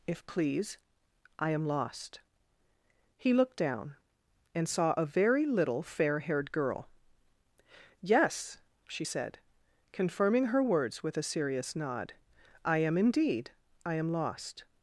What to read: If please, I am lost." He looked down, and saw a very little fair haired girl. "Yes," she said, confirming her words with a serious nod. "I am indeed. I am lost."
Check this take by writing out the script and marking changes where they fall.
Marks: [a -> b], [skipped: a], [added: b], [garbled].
If please, I am lost." He looked down, and saw a very little fair haired girl. "Yes," she said, confirming her words with a serious nod. "I am indeed. I am lost."